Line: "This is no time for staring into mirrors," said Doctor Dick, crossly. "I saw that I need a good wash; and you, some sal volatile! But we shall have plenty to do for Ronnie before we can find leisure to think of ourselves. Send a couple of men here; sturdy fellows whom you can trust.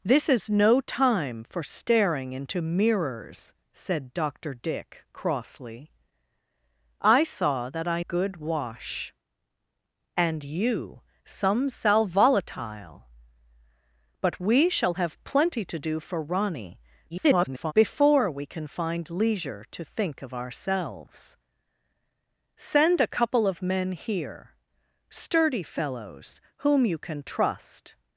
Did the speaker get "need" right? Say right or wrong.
wrong